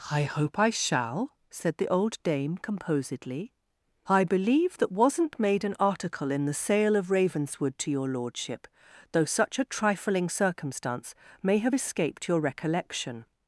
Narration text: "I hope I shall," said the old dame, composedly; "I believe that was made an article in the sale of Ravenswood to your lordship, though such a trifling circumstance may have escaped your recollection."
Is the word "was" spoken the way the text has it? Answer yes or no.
no